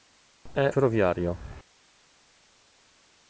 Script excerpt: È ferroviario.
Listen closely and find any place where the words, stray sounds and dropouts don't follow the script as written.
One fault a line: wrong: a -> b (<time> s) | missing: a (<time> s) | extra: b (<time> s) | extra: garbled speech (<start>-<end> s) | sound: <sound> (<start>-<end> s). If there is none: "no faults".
no faults